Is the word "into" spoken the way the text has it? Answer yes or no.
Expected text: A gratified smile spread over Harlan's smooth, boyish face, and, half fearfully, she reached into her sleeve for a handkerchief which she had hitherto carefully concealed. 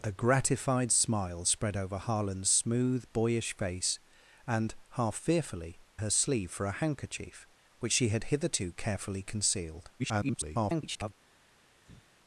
no